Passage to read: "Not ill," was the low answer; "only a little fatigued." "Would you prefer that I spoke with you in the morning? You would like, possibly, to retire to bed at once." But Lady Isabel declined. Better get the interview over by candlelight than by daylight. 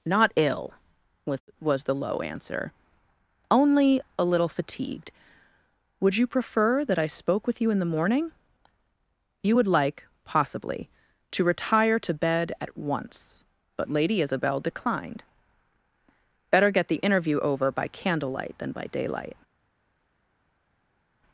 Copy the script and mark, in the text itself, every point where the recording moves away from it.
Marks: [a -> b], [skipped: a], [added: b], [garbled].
"Not ill," was [added: was] the low answer; "only a little fatigued." "Would you prefer that I spoke with you in the morning? You would like, possibly, to retire to bed at once." But Lady Isabel declined. Better get the interview over by candlelight than by daylight.